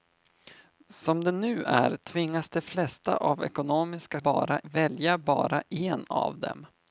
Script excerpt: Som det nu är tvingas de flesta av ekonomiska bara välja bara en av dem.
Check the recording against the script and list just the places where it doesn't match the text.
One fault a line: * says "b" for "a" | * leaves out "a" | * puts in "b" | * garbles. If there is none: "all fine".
all fine